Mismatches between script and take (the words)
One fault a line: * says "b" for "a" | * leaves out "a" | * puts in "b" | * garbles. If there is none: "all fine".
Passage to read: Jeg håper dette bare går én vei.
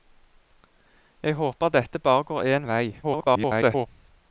* garbles